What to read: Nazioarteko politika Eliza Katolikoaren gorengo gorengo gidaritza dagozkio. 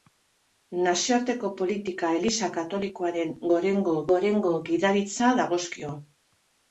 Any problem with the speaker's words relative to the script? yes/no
no